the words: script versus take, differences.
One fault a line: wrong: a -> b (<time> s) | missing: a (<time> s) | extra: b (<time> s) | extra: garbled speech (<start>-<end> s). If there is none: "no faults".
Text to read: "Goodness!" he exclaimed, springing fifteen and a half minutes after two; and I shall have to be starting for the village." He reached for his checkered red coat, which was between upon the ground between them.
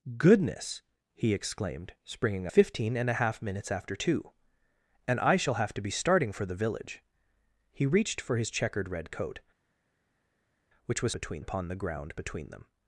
no faults